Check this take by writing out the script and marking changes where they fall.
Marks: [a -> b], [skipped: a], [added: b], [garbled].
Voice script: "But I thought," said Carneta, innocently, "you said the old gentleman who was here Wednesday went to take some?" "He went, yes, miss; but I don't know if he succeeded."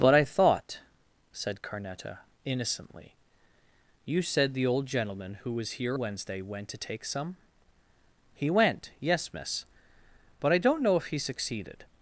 "But I thought," said Carneta, innocently, "you said the old gentleman who was here Wednesday went to take some?" "He went, yes, miss; but I don't know if he succeeded."